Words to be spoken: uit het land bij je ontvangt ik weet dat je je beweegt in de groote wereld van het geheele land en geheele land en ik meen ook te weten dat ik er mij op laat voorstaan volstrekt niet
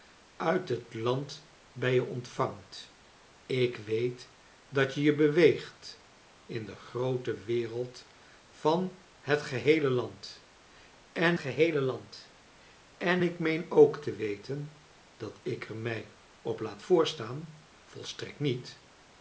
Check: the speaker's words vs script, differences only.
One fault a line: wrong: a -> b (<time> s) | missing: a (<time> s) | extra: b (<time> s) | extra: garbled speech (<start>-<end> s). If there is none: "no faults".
no faults